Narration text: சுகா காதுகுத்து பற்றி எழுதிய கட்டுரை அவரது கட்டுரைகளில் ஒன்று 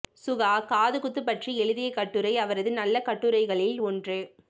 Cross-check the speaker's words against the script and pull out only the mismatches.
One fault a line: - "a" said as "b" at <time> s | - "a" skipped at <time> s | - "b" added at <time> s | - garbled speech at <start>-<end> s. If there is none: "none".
- "நல்ல" added at 2.7 s